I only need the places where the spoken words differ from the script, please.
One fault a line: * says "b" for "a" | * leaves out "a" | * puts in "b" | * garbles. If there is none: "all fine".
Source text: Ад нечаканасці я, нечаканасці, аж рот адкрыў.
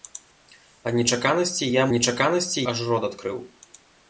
all fine